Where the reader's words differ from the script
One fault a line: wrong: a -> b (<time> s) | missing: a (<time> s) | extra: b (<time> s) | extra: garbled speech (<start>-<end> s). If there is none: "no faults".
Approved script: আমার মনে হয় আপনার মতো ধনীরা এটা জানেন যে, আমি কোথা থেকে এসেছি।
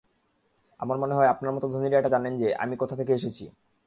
no faults